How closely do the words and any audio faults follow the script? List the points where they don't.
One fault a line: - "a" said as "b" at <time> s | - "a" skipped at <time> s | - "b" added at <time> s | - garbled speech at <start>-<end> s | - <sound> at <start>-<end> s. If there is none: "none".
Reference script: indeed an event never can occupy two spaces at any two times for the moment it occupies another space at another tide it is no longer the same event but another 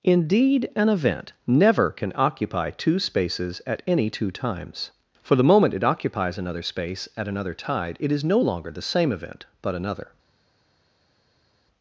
none